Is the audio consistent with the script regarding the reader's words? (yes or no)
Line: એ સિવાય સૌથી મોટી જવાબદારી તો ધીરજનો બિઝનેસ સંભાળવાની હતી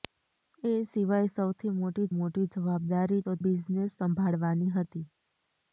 no